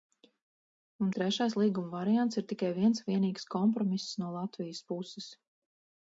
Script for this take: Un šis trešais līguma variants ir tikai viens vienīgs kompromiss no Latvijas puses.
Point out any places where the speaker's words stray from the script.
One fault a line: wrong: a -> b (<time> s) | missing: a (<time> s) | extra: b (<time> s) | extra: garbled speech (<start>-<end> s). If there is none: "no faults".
missing: šis (1.1 s)